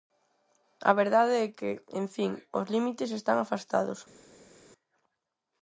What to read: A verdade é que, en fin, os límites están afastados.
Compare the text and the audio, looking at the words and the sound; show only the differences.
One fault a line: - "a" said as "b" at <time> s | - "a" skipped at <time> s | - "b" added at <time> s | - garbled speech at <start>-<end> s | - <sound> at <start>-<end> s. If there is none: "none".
none